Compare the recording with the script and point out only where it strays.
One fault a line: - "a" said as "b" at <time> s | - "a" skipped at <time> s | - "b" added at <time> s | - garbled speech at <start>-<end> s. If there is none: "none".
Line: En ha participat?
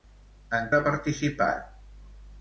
none